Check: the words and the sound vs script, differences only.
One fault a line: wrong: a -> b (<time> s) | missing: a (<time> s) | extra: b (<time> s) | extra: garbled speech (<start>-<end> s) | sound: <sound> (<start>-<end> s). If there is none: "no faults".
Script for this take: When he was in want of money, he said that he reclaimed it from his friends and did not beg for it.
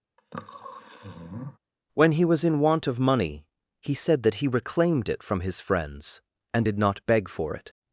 sound: sniff (0.2-1.6 s)